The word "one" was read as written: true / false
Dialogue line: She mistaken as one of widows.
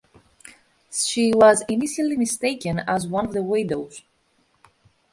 true